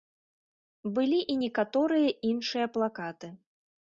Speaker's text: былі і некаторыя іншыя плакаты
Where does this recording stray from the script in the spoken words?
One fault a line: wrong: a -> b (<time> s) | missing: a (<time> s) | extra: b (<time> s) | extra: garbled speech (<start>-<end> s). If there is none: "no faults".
no faults